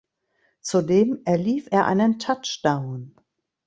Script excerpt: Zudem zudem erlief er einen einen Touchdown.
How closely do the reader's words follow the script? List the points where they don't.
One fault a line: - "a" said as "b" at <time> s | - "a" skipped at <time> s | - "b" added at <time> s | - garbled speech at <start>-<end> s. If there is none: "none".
- "zudem" skipped at 1.2 s
- "einen" skipped at 2.2 s